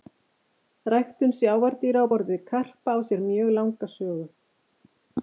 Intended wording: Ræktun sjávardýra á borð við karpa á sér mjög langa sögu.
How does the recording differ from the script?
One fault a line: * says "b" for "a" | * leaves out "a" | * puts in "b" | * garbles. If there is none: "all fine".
all fine